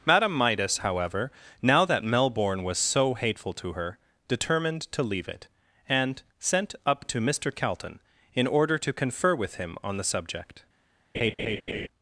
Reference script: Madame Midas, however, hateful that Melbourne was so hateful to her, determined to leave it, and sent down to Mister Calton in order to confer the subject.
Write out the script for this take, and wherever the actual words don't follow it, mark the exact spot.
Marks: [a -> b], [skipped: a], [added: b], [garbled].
Madame Midas, however, [hateful -> now] that Melbourne was so hateful to her, determined to leave it, and sent [down -> up] to Mister Calton in order to confer [added: with him on] the subject.